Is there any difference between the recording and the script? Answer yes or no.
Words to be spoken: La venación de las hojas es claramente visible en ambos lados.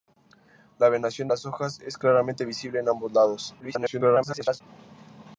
yes